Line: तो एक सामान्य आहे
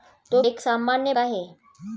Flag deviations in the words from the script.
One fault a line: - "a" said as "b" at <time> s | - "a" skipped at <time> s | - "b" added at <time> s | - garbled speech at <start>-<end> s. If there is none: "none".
none